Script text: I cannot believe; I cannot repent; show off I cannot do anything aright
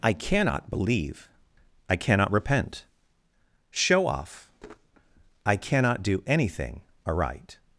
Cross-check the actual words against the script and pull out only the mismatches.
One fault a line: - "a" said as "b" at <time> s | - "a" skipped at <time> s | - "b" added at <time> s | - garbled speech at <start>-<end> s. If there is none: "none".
none